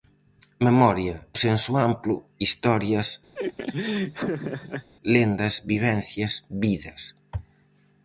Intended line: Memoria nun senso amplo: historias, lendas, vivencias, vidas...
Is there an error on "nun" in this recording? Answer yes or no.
yes